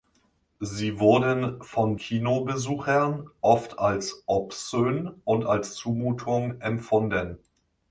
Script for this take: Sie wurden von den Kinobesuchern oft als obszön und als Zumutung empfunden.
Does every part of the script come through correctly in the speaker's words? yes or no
no